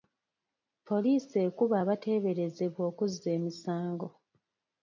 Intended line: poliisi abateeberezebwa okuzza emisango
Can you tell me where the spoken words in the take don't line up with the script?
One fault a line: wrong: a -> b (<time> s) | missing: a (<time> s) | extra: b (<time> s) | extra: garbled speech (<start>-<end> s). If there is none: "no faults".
extra: ekuba (1.5 s)